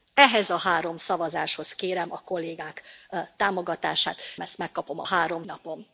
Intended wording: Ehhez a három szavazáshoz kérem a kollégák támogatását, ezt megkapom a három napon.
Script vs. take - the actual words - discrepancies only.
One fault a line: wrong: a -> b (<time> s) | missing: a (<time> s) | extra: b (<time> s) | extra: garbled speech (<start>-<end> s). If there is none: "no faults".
no faults